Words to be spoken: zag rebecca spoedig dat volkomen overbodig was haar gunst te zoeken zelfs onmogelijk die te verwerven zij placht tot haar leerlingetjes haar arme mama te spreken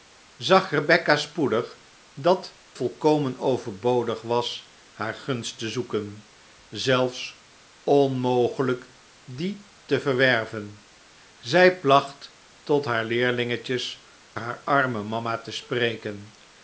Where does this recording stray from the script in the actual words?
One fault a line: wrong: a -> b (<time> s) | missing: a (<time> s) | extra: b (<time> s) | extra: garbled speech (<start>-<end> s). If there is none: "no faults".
no faults